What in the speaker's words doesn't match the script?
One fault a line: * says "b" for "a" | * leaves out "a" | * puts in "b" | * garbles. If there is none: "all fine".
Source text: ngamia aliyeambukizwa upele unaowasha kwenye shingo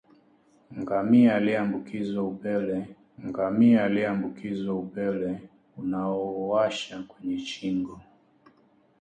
* puts in "ngamia aliyeambukizwa upele"